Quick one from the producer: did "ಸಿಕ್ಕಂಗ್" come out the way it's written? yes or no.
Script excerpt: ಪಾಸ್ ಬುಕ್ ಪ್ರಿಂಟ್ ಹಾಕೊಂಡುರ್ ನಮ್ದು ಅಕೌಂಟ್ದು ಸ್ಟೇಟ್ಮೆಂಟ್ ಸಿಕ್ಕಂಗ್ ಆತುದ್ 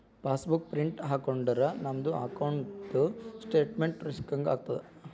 yes